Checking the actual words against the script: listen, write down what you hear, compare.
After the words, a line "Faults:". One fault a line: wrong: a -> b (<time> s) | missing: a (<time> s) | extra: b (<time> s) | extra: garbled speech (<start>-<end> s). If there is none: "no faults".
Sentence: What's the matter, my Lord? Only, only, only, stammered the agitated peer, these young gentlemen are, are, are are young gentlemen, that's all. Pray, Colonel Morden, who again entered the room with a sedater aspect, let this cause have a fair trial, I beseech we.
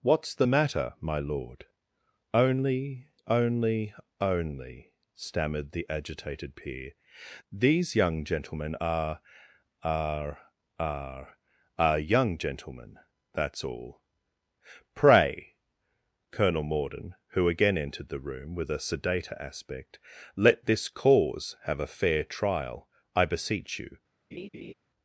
What's the matter, my Lord? Only, only, only, stammered the agitated peer, these young gentlemen are, are, are are young gentlemen, that's all. Pray, Colonel Morden, who again entered the room with a sedater aspect, let this cause have a fair trial, I beseech you.
Faults:
wrong: we -> you (23.8 s)